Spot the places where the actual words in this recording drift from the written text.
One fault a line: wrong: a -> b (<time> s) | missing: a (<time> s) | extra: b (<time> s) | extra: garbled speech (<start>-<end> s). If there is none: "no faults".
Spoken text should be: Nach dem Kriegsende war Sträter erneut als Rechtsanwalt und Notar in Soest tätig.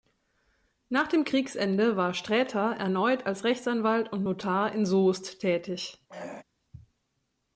no faults